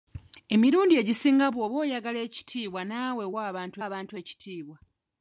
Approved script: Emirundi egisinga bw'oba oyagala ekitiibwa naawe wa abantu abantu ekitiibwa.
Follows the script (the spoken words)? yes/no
yes